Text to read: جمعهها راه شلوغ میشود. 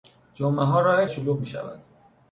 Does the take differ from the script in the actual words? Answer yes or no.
no